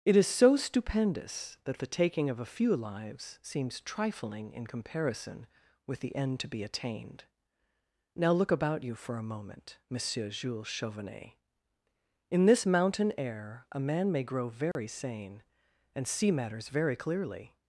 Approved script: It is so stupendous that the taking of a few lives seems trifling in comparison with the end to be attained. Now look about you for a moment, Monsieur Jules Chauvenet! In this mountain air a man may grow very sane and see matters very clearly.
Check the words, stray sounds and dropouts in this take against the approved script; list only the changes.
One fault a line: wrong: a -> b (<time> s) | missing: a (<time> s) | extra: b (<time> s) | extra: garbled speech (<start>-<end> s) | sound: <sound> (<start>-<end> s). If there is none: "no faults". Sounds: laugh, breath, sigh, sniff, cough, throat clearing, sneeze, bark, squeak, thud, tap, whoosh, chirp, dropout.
sound: dropout (14.7-14.8 s)